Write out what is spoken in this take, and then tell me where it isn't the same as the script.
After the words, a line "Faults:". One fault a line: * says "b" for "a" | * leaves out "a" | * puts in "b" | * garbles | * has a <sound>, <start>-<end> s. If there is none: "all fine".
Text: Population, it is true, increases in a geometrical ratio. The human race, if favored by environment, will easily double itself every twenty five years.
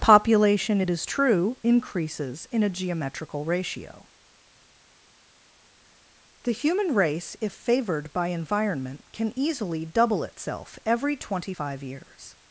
Population, it is true, increases in a geometrical ratio. The human race, if favored by environment, can easily double itself every twenty five years.
Faults:
* says "can" for "will"